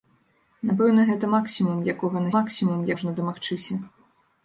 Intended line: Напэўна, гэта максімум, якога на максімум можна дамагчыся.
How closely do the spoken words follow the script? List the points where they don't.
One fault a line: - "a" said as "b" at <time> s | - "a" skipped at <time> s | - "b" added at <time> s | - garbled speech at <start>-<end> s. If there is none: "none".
none